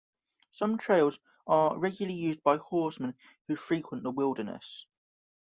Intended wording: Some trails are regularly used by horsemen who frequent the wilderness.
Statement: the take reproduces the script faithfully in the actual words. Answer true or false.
true